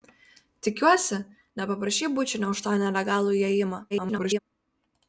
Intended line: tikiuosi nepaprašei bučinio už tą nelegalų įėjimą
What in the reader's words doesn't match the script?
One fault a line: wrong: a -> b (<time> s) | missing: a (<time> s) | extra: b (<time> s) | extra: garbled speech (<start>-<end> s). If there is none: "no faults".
extra: garbled speech (3.9-4.4 s)